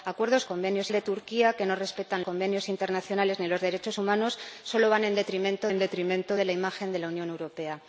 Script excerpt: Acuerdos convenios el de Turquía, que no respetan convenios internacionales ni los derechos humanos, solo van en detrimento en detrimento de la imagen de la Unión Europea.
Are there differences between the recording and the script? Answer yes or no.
no